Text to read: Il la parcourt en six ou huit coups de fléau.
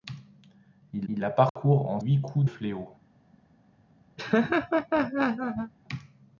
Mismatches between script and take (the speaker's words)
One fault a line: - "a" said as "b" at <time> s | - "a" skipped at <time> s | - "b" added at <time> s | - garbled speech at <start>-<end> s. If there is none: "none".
- "il" added at 1.1 s
- "six ou" skipped at 2.0 s
- "de" skipped at 2.4 s